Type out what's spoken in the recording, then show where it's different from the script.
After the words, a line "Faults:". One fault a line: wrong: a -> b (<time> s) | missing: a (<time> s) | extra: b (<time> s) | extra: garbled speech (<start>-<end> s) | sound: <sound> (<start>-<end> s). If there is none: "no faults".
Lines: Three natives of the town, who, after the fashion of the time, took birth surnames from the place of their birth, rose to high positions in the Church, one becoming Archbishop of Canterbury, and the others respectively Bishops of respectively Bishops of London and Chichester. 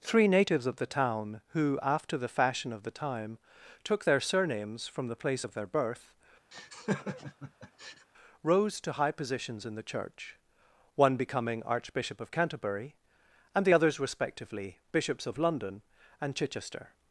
Three natives of the town, who, after the fashion of the time, took their surnames from the place of their birth, rose to high positions in the Church, one becoming Archbishop of Canterbury, and the others respectively Bishops of London and Chichester.
Faults:
wrong: birth -> their (4.0 s)
sound: laugh (6.5-8.1 s)
missing: respectively Bishops of (15.4 s)